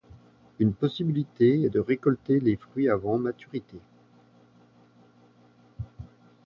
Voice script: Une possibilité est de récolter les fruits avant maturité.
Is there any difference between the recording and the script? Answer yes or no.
no